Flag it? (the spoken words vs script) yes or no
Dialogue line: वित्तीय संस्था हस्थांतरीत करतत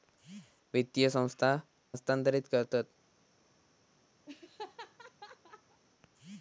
no